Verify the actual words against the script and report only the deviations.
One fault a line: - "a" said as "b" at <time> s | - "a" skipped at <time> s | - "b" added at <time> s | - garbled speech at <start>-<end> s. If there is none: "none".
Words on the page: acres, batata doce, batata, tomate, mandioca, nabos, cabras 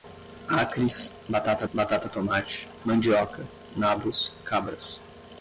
- "doce" skipped at 1.7 s